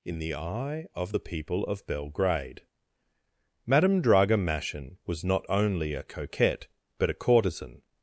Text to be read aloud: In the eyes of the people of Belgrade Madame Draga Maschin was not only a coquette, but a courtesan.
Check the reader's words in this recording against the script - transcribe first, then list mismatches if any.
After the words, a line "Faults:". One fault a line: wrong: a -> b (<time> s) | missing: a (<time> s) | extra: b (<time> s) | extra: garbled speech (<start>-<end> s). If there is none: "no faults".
In the eye of the people of Belgrade Madame Draga Maschin was not only a coquette, but a courtesan.
Faults:
wrong: eyes -> eye (0.3 s)